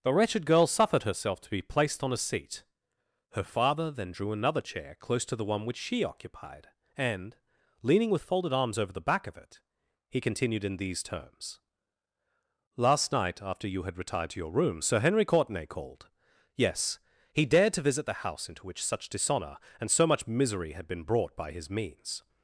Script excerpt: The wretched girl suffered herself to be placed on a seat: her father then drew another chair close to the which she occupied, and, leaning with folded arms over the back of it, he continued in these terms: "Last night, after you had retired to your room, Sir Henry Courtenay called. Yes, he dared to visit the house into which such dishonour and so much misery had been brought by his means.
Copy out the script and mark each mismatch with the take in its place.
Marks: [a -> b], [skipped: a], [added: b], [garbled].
The wretched girl suffered herself to be placed on a seat: her father then drew another chair close to the [added: one] which she occupied, and, leaning with folded arms over the back of it, he continued in these terms: "Last night, after you had retired to your room, Sir Henry Courtenay called. Yes, he dared to visit the house into which such dishonour and so much misery had been brought by his means.